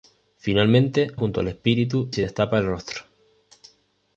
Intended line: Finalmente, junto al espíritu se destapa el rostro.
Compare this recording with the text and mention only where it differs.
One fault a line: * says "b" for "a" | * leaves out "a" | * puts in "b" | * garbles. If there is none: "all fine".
all fine